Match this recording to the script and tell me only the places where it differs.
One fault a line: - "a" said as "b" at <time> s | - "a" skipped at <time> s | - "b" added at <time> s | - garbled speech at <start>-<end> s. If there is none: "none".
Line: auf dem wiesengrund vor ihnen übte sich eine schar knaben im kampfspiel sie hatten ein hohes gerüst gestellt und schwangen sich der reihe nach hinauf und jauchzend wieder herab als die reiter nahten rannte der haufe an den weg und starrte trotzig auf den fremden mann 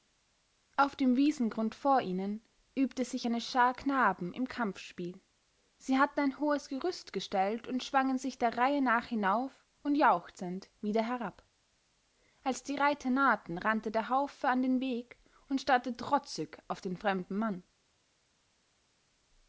none